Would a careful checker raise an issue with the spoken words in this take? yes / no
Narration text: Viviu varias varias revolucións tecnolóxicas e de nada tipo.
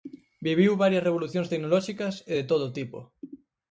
yes